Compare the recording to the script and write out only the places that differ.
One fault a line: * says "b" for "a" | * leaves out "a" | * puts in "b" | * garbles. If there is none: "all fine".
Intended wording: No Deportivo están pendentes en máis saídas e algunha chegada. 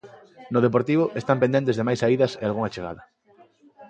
* says "de" for "en"